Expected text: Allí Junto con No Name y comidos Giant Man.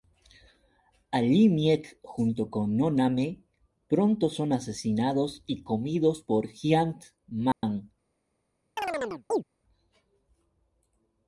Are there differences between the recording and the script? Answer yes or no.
yes